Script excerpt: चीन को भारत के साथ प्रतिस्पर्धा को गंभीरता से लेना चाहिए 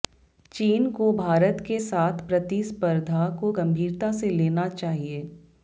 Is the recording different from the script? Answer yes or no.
no